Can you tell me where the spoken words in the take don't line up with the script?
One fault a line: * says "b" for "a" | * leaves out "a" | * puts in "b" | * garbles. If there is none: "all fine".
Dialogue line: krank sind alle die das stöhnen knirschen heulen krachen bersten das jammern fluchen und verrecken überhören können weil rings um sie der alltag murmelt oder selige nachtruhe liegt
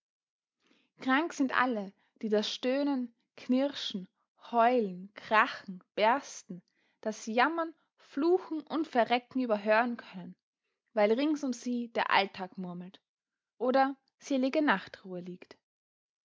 all fine